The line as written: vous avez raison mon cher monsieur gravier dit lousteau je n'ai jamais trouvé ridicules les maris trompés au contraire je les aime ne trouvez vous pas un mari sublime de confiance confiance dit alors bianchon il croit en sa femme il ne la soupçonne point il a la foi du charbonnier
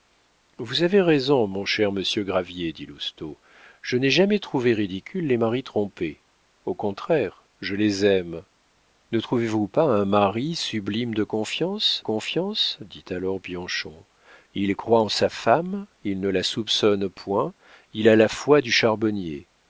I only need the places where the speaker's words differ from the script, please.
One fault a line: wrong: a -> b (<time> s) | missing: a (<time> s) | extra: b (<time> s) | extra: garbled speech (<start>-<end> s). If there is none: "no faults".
no faults